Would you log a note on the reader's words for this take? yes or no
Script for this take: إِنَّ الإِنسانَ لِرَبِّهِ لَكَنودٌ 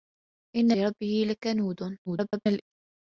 yes